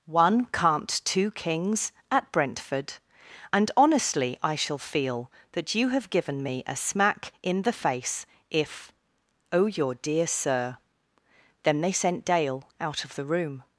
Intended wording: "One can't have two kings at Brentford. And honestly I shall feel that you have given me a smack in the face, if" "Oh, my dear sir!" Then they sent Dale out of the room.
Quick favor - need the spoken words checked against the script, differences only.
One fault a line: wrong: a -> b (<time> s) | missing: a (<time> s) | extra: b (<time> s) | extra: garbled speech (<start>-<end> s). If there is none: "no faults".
missing: have (1.0 s)
wrong: my -> your (9.7 s)